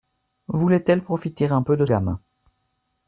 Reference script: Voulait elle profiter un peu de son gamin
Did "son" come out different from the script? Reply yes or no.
yes